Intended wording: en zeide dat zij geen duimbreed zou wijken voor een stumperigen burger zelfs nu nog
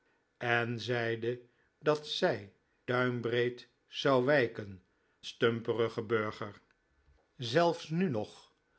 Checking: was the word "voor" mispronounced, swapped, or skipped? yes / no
yes